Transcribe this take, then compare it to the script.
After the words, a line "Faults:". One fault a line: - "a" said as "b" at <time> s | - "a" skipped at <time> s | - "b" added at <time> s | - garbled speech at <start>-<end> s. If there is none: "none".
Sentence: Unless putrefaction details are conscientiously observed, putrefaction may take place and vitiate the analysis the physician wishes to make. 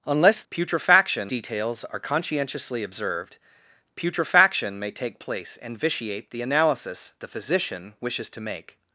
Unless putrefaction details are conscientiously observed, putrefaction may take place and vitiate the analysis the physician wishes to make.
Faults:
none